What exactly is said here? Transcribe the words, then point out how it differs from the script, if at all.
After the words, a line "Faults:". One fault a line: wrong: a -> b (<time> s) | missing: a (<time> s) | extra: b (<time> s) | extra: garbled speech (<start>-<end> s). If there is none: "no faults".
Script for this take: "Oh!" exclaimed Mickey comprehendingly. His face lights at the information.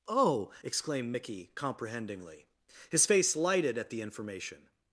"Oh!" exclaimed Mickey comprehendingly. His face lighted at the information.
Faults:
wrong: lights -> lighted (3.4 s)